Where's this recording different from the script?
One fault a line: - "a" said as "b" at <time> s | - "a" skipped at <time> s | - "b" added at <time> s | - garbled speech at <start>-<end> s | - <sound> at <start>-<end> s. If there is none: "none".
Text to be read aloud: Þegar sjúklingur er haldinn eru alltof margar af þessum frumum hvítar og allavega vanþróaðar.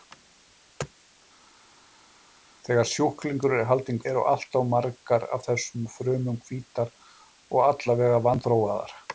none